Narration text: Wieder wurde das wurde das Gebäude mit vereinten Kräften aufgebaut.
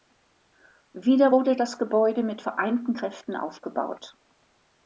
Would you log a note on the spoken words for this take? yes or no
yes